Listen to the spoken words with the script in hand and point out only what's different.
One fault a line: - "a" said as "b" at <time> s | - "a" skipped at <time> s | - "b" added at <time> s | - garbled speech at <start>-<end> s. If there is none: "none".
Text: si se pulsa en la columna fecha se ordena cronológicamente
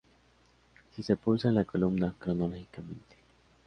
- "fecha se ordena" skipped at 2.1 s